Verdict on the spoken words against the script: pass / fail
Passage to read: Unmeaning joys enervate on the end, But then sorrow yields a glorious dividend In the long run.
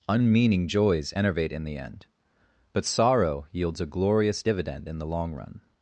fail